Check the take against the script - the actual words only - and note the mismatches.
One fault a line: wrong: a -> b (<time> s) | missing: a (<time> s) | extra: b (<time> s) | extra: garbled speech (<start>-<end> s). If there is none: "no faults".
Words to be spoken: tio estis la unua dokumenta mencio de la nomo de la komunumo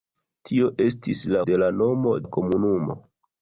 missing: unua dokumenta mencio (1.4 s)
missing: de (2.2 s)